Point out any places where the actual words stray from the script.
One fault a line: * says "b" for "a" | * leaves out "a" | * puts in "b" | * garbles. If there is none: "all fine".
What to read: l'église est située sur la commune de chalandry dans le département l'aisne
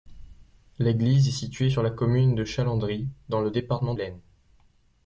all fine